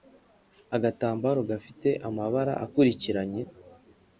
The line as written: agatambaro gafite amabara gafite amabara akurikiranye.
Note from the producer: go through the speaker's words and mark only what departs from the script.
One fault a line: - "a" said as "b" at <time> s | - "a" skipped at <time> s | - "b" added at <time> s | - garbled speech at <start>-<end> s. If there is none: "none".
- "gafite amabara" skipped at 2.5 s